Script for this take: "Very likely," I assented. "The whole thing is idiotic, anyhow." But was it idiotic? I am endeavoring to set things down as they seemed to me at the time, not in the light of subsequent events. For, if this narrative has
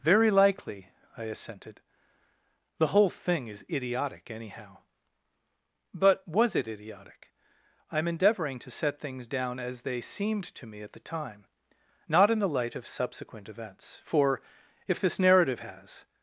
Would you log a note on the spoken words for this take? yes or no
no